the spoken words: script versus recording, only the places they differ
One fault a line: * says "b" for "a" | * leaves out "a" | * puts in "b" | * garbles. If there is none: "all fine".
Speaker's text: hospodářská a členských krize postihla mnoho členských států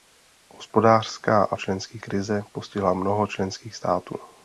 all fine